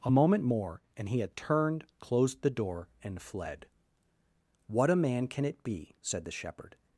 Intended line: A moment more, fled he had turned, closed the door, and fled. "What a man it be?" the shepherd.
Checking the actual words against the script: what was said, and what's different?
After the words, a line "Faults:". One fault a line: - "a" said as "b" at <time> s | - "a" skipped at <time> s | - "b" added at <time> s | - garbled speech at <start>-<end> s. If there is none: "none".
A moment more, and he had turned, closed the door, and fled. "What a man can it be?" said the shepherd.
Faults:
- "fled" said as "and" at 1.0 s
- "can" added at 5.3 s
- "said" added at 6.0 s